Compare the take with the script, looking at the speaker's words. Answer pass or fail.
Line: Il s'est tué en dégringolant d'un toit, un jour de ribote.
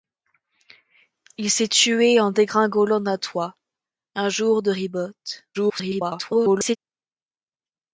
fail